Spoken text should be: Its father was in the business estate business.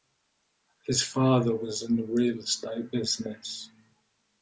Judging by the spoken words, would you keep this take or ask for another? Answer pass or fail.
fail